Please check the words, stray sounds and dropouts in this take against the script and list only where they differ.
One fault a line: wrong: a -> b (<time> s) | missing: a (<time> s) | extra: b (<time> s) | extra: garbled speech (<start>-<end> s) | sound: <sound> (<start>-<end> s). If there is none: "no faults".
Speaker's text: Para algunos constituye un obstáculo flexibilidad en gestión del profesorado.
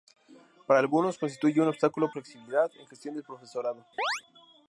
sound: chirp (4.0-4.2 s)